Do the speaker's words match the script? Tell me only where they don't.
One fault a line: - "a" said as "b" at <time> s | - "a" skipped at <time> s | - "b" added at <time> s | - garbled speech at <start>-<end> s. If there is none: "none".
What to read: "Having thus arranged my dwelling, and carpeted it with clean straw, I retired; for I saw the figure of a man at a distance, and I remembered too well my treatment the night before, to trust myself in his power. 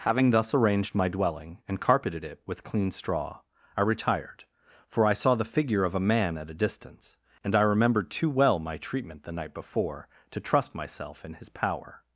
none